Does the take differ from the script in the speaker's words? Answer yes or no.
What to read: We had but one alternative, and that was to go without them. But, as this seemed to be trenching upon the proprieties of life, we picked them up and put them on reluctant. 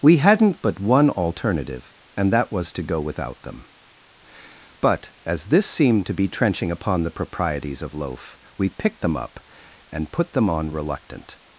yes